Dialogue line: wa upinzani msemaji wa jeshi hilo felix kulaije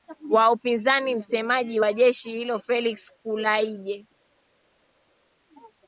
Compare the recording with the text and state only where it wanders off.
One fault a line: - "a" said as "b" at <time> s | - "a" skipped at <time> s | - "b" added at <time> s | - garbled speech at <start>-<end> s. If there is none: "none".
none